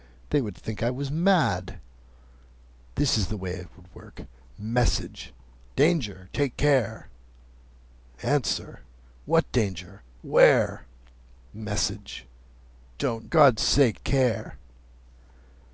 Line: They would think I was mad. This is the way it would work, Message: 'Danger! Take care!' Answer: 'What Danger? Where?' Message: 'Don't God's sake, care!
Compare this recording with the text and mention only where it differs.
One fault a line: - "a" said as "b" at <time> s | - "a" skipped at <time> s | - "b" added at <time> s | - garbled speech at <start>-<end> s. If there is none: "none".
none